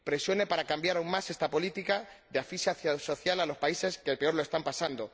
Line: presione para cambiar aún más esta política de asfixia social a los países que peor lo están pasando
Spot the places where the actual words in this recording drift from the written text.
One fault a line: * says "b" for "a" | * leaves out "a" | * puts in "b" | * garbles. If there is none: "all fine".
all fine